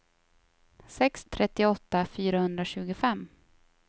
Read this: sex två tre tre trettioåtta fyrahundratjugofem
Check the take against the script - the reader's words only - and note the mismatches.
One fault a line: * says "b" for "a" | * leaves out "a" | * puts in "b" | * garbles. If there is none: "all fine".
* leaves out "två tre tre"